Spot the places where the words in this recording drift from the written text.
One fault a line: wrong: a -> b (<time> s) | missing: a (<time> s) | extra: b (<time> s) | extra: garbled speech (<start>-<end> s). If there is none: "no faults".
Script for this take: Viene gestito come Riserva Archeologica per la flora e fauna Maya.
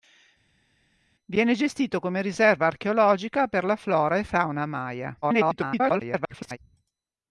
extra: garbled speech (5.2-6.6 s)